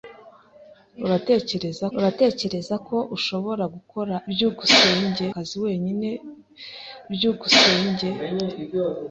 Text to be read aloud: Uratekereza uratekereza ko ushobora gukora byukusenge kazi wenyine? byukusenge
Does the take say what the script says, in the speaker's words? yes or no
yes